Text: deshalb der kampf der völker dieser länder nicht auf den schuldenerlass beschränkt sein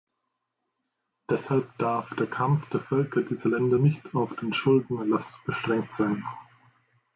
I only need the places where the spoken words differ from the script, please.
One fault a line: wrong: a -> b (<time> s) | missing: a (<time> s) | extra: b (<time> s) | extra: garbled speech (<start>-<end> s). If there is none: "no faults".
extra: darf (1.8 s)